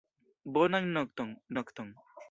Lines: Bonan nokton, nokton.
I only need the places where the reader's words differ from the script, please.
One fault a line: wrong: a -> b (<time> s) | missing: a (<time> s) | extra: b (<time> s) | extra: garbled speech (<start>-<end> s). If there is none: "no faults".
no faults